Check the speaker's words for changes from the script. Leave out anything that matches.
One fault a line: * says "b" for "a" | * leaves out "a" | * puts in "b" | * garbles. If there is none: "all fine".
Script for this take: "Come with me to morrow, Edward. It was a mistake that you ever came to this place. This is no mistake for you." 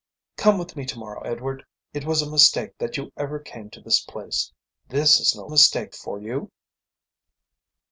all fine